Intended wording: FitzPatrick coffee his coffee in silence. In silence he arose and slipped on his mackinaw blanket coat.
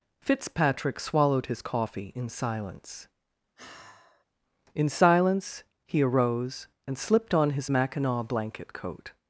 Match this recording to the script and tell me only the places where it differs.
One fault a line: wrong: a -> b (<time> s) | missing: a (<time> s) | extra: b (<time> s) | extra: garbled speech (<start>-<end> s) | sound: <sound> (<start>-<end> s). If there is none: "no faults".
wrong: coffee -> swallowed (1.0 s)
sound: sigh (3.6-4.2 s)